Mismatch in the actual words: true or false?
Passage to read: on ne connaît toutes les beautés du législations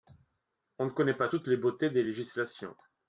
true